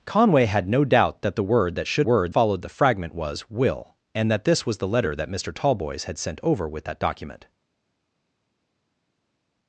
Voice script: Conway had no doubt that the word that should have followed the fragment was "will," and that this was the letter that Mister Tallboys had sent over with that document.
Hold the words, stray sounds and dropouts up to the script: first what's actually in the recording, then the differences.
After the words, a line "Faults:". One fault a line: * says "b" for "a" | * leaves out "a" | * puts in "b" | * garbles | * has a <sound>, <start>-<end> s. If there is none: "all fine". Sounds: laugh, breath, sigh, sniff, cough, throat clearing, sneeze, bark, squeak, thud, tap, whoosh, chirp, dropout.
Conway had no doubt that the word that should word followed the fragment was "will," and that this was the letter that Mister Tallboys had sent over with that document.
Faults:
* says "word" for "have"